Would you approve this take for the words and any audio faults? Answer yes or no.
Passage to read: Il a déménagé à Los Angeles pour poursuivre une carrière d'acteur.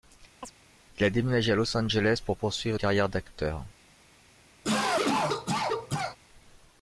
no